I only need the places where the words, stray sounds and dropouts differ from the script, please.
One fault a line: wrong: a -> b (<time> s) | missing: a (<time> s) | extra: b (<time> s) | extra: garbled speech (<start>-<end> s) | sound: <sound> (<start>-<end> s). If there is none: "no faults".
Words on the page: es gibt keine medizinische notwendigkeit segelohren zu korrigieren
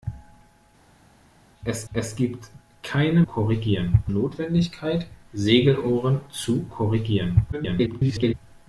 extra: es (1.9 s)
wrong: medizinische -> korrigieren (3.2 s)
extra: garbled speech (7.5-8.3 s)